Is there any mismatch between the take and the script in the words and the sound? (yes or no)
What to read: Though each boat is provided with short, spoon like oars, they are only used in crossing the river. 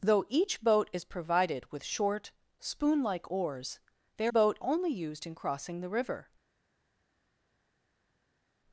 yes